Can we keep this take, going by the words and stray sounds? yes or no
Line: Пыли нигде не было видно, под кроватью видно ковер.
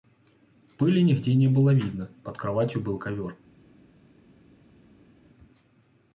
no